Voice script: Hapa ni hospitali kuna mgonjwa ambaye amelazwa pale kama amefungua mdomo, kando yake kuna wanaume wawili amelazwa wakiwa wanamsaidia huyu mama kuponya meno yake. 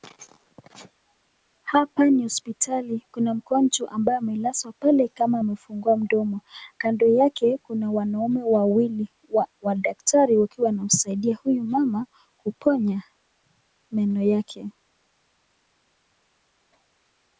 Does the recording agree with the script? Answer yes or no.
no